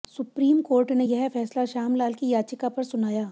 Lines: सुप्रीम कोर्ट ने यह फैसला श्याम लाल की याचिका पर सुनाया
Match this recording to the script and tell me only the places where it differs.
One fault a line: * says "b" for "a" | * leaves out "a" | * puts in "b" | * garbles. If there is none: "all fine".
all fine